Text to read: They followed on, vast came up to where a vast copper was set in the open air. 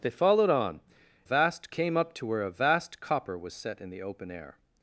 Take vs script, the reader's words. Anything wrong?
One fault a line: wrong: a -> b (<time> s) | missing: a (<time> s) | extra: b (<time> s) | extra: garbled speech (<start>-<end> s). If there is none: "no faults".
no faults